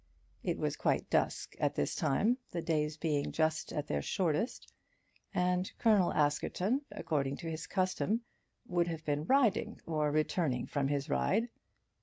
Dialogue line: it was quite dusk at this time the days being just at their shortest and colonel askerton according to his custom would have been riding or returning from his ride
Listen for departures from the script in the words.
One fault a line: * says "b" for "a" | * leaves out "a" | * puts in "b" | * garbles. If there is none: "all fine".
all fine